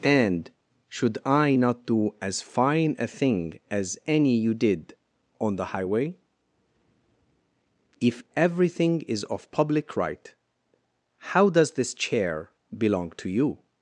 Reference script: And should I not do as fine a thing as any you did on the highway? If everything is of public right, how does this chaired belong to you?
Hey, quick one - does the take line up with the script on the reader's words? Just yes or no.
no